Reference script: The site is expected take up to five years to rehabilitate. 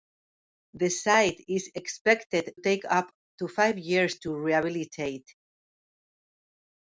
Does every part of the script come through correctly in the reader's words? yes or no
yes